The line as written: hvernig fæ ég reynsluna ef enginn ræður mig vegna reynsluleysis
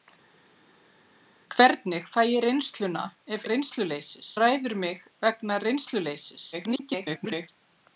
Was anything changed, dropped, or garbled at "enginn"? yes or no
yes